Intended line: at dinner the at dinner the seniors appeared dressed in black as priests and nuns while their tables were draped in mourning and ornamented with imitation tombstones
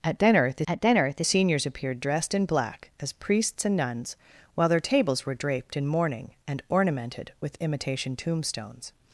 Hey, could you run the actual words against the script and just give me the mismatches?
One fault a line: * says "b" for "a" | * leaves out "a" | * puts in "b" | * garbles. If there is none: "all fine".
all fine